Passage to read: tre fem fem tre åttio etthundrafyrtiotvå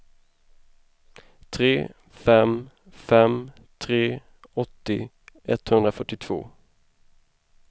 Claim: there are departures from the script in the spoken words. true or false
false